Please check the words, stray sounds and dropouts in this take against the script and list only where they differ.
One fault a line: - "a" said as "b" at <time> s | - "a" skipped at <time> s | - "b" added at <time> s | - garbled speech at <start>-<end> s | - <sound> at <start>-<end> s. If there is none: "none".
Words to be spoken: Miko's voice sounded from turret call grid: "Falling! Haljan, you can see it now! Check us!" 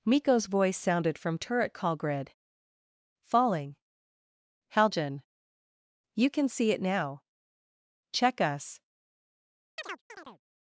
- chirp at 9.8-10.4 s